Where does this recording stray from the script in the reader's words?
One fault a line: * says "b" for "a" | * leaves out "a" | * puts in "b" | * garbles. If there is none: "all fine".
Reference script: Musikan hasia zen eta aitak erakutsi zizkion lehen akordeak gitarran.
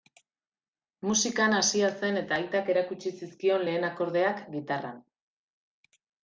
all fine